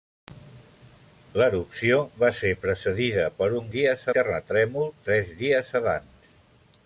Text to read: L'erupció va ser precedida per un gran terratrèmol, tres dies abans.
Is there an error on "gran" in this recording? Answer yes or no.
yes